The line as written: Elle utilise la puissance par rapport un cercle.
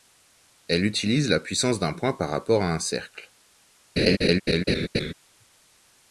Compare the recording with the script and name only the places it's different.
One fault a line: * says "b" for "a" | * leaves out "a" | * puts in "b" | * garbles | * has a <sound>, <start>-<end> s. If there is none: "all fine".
* puts in "d'un point"
* puts in "à"
* has a laugh, 4.0-5.1 s